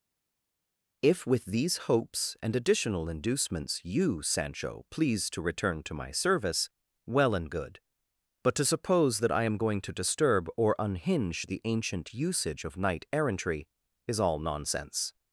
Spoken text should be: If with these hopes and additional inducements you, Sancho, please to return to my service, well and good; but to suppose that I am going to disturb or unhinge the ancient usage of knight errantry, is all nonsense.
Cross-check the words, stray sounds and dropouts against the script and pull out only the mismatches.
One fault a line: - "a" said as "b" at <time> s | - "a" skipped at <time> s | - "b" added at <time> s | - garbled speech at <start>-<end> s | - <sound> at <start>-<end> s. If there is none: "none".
none